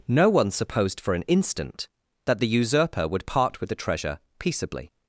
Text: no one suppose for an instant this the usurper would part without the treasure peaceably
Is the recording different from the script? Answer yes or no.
yes